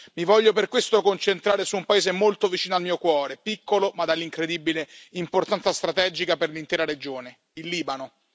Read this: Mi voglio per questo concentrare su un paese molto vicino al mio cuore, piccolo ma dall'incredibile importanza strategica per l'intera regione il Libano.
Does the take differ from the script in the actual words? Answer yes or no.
no